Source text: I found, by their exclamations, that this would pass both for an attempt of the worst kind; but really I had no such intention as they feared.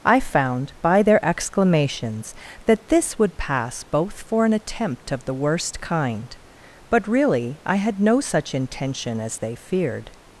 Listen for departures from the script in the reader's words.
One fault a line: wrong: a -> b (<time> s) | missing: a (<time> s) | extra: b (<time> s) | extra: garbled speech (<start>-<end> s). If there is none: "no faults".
no faults